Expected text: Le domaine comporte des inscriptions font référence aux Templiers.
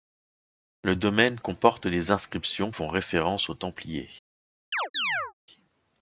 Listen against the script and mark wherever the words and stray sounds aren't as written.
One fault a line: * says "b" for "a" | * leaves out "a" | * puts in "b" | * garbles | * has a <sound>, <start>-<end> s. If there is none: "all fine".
* has a chirp, 4.7-5.3 s